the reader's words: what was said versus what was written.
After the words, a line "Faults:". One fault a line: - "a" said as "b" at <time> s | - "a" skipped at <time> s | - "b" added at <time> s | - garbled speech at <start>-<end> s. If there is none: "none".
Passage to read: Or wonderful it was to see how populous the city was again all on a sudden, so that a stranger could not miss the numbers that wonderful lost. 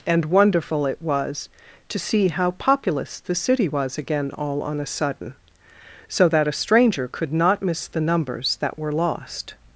And wonderful it was to see how populous the city was again all on a sudden, so that a stranger could not miss the numbers that were lost.
Faults:
- "Or" said as "And" at 0.1 s
- "wonderful" said as "were" at 8.8 s